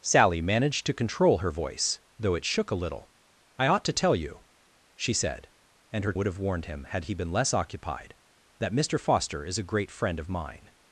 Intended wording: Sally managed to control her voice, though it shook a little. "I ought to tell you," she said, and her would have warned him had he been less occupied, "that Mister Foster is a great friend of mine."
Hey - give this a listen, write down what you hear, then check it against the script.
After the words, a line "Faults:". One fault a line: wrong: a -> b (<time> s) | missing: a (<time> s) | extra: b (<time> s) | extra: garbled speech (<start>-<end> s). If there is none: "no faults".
Sally managed to control her voice, though it shook a little. "I ought to tell you," she said, and her would have warned him had he been less occupied, "that Mister Foster is a great friend of mine."
Faults:
no faults